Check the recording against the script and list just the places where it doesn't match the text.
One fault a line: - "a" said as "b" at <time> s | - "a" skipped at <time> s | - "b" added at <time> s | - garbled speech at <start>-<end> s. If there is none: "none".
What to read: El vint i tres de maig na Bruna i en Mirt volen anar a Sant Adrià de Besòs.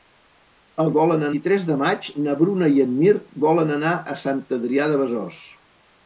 - "vint" said as "volen" at 1.0 s